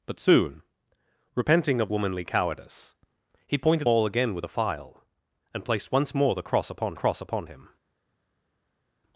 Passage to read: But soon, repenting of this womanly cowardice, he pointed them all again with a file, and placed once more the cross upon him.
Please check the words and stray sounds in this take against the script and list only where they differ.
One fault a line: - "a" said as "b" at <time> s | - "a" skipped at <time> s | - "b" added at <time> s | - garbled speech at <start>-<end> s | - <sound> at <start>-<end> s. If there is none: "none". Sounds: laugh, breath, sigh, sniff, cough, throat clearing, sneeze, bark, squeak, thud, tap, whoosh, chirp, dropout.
- "this" skipped at 1.9 s
- "them" skipped at 3.9 s
- "cross upon" added at 6.9 s